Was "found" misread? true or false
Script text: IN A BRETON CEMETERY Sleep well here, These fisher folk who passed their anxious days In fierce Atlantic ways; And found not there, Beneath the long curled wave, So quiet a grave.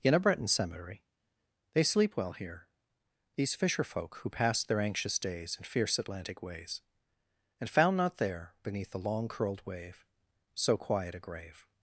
false